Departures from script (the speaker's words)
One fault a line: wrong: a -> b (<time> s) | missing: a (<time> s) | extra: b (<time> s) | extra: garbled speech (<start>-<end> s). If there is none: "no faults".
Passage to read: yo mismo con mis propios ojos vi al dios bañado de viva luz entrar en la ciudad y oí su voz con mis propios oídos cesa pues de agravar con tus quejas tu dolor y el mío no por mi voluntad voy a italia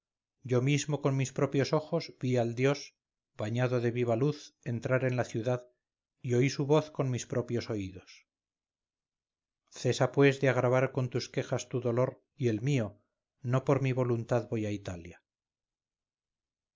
no faults